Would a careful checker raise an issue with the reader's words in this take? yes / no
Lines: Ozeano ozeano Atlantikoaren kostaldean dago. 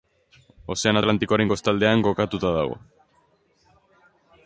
yes